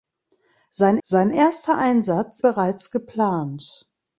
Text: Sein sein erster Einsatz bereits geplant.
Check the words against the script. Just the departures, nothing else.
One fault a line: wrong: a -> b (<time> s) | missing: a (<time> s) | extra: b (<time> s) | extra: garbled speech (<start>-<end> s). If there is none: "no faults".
no faults